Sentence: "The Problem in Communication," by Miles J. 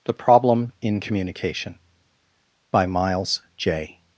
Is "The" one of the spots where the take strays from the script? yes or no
no